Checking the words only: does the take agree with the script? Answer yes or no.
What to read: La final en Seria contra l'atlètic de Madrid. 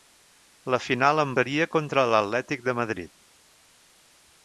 yes